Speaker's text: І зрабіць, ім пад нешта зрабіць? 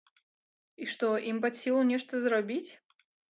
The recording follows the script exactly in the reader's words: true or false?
false